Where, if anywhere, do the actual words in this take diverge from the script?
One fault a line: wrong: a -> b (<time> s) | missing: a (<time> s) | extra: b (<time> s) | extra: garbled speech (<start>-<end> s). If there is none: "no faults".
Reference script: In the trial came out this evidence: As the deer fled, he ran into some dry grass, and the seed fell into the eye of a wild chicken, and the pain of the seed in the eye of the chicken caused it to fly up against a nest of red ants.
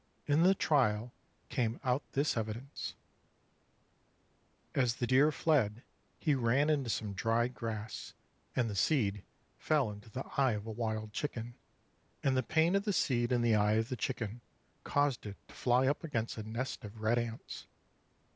no faults